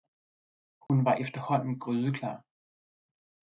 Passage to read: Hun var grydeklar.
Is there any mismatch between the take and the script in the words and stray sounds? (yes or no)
yes